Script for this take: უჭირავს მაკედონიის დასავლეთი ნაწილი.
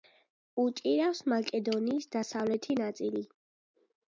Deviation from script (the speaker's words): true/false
false